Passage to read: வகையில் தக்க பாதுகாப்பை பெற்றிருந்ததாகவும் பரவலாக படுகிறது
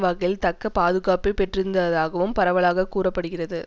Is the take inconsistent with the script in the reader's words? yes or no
yes